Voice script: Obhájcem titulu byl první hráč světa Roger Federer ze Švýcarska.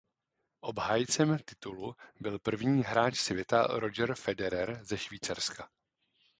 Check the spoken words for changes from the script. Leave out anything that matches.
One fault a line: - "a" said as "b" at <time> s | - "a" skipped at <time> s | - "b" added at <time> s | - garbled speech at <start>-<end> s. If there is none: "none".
none